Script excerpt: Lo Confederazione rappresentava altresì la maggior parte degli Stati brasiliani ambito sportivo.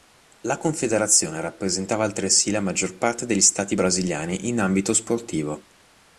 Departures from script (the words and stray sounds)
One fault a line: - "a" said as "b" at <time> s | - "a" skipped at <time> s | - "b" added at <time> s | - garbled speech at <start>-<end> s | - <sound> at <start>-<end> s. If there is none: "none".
- "Lo" said as "La" at 0.4 s
- "in" added at 4.5 s